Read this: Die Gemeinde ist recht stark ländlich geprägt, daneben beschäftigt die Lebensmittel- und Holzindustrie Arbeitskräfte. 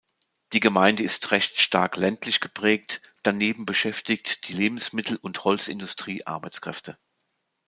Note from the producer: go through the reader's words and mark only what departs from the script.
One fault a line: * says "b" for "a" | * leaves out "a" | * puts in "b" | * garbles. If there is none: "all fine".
all fine